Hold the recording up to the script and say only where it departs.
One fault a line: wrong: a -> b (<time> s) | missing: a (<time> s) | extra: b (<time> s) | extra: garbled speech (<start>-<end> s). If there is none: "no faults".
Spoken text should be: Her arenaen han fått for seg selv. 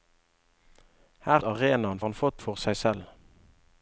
no faults